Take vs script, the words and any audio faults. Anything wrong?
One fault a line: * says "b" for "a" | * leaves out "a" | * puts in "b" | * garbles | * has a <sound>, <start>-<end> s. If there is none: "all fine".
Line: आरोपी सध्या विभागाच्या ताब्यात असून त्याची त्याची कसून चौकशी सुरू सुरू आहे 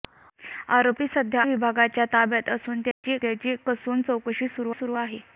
* has a dropout, 2.9-3.0 s